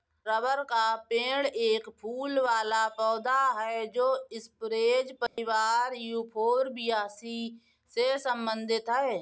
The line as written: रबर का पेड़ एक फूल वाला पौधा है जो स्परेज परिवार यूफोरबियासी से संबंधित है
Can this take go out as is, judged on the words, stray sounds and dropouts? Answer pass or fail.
fail